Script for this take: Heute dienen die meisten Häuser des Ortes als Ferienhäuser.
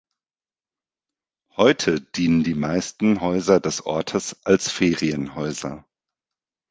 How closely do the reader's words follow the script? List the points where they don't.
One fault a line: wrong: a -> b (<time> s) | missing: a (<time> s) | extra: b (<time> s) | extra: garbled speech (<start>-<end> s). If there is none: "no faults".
no faults